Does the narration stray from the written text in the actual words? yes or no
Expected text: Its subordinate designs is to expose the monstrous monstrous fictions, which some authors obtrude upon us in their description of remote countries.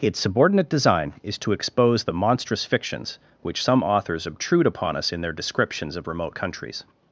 yes